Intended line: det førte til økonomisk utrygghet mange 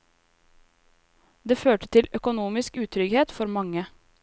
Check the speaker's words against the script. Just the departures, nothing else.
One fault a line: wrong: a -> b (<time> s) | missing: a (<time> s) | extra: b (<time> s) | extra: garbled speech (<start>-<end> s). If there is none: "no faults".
extra: for (3.3 s)